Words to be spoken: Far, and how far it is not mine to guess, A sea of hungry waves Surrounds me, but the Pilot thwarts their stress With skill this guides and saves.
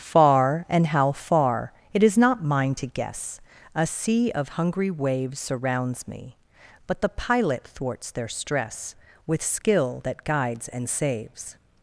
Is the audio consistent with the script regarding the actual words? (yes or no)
no